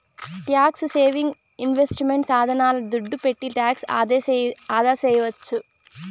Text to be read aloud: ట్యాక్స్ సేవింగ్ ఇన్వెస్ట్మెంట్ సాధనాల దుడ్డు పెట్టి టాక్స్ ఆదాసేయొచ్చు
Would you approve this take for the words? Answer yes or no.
yes